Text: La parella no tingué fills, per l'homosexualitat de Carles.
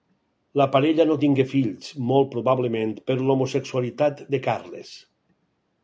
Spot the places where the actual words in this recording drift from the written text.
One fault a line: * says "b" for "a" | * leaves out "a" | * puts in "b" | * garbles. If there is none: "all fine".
* puts in "molt probablement"